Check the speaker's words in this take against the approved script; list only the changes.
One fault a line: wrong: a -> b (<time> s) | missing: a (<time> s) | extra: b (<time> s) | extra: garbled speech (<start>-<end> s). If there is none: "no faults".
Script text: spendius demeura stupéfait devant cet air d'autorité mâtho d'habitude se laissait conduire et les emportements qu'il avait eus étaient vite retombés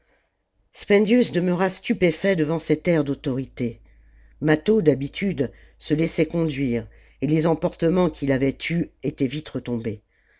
no faults